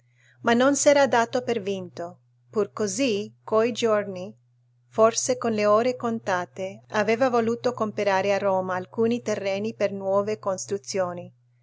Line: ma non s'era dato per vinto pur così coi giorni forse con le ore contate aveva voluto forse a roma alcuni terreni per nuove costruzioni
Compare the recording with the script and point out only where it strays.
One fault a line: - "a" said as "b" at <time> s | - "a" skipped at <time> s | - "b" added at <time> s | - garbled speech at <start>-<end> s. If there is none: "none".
- "forse" said as "comperare" at 7.8 s